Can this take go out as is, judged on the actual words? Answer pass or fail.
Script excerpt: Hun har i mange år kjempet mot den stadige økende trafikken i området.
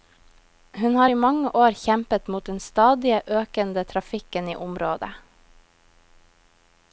pass